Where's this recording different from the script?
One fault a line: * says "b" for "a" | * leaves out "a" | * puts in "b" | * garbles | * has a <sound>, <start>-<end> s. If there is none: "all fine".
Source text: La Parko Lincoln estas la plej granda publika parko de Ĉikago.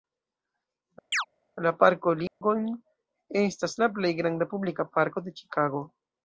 * has a chirp, 1.1-1.3 s
* has a dropout, 2.3-2.4 s